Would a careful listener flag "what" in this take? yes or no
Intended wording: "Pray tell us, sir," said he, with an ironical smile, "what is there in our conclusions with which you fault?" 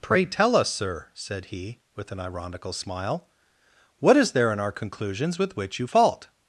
no